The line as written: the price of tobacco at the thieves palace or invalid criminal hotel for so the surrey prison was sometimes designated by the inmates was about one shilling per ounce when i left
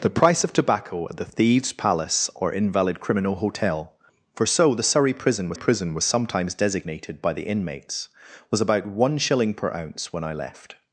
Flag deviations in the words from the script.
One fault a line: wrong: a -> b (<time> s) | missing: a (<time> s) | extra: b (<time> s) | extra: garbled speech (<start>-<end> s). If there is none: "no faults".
extra: prison was (5.5 s)